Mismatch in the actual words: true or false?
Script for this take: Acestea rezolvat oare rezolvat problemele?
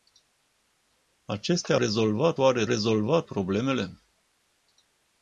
false